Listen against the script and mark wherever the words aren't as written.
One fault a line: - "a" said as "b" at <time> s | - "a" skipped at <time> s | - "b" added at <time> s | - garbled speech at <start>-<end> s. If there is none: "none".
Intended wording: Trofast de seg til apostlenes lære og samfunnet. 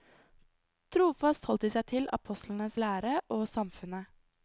- "holdt" added at 1.5 s